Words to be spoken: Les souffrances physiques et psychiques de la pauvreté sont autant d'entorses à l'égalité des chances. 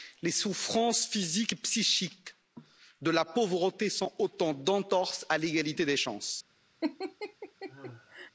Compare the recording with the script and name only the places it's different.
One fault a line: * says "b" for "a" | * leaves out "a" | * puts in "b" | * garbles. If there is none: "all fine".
all fine